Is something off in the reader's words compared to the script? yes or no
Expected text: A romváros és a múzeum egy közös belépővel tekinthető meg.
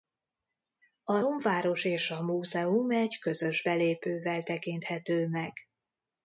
no